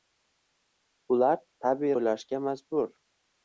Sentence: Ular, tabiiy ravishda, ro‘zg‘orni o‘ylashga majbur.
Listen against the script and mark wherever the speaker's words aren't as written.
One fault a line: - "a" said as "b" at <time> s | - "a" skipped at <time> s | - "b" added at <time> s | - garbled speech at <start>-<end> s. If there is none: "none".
- "ravishda ro‘zg‘orni" skipped at 1.9 s